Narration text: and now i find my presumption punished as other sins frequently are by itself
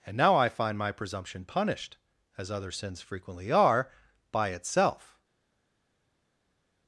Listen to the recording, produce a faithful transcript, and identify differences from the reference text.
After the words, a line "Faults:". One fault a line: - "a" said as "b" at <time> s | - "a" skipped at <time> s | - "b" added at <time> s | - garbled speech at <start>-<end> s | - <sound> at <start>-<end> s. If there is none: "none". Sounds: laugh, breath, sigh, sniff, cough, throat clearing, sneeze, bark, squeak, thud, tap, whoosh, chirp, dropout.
and now i find my presumption punished as other sins frequently are by itself
Faults:
none